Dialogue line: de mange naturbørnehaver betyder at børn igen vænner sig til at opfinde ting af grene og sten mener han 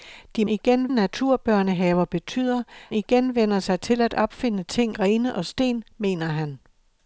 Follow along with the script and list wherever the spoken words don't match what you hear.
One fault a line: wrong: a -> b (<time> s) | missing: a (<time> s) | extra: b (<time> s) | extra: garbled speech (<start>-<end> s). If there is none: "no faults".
wrong: mange -> igen (0.5 s)
missing: at børn (2.6 s)
missing: af (5.0 s)